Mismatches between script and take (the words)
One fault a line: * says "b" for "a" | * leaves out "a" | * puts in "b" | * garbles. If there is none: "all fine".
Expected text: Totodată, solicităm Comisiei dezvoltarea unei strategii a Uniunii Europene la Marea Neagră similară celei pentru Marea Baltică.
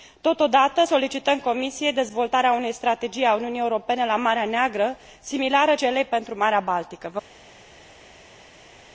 all fine